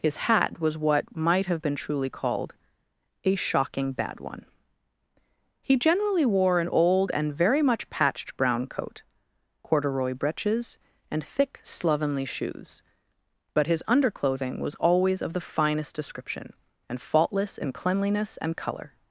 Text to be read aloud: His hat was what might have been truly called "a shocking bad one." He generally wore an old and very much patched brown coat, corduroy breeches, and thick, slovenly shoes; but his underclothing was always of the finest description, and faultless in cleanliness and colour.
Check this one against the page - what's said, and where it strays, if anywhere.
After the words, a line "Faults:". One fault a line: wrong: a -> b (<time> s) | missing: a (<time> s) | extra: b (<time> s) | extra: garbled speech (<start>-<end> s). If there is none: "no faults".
His hat was what might have been truly called "a shocking bad one." He generally wore an old and very much patched brown coat, corduroy breeches, and thick, slovenly shoes; but his underclothing was always of the finest description, and faultless in cleanliness and colour.
Faults:
no faults